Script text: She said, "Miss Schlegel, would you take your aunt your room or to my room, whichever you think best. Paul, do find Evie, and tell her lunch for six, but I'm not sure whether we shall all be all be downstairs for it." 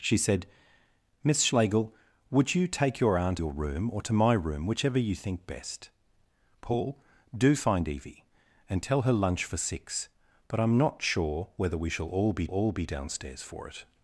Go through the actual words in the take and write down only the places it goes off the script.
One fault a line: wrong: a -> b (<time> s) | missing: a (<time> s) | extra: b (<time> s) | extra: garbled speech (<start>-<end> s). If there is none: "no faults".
no faults